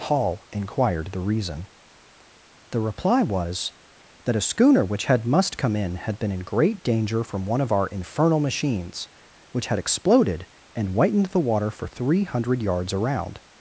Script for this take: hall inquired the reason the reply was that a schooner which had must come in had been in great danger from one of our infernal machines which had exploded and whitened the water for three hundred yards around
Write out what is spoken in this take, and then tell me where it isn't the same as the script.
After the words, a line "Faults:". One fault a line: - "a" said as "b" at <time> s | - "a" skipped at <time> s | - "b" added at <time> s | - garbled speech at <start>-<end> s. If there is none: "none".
hall inquired the reason the reply was that a schooner which had must come in had been in great danger from one of our infernal machines which had exploded and whitened the water for three hundred yards around
Faults:
none